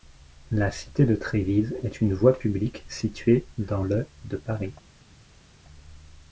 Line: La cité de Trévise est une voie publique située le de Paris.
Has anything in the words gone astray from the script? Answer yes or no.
yes